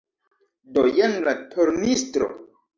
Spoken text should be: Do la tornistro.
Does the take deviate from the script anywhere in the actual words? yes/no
yes